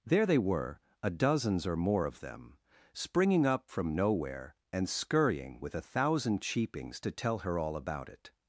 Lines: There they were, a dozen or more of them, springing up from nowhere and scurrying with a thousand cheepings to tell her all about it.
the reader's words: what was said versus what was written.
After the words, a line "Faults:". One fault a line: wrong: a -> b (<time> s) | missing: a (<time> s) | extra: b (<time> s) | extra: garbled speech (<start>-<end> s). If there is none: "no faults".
There they were, a dozens or more of them, springing up from nowhere and scurrying with a thousand cheepings to tell her all about it.
Faults:
wrong: dozen -> dozens (1.1 s)